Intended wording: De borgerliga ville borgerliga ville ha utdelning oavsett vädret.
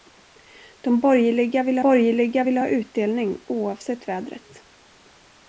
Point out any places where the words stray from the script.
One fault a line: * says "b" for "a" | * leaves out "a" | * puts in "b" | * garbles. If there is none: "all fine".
all fine